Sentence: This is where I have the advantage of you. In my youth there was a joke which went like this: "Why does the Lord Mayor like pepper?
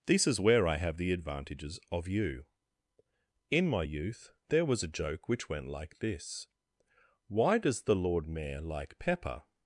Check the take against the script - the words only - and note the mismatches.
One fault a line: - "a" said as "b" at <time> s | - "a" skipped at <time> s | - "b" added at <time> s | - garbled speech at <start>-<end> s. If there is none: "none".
- "advantage" said as "advantages" at 1.1 s